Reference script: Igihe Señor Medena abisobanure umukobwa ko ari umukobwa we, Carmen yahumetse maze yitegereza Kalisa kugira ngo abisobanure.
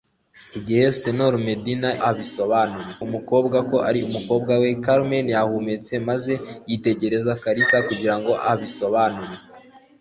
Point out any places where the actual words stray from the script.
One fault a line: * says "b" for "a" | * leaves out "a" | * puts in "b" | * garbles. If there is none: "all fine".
all fine